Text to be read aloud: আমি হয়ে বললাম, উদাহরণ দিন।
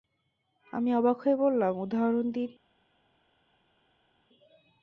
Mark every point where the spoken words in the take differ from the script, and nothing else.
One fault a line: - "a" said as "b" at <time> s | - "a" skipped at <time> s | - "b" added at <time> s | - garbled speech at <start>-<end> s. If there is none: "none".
- "অবাক" added at 0.9 s